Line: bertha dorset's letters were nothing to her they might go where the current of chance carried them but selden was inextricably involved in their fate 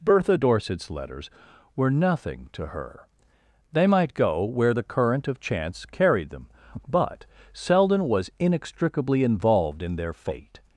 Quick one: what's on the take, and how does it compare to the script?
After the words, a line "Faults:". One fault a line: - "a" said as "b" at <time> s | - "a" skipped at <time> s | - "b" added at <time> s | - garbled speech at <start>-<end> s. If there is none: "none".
bertha dorset's letters were nothing to her they might go where the current of chance carried them but selden was inextricably involved in their fate
Faults:
none